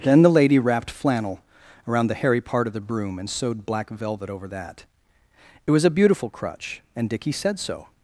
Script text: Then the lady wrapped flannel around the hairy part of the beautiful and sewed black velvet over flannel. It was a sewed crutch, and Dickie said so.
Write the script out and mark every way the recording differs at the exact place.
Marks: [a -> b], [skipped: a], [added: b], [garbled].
Then the lady wrapped flannel around the hairy part of the [beautiful -> broom] and sewed black velvet over [flannel. -> that] It was a [sewed -> beautiful] crutch, and Dickie said so.